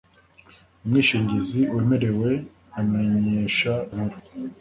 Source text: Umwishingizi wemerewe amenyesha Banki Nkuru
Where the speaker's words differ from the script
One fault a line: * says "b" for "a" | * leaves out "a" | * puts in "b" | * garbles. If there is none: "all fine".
* leaves out "Banki"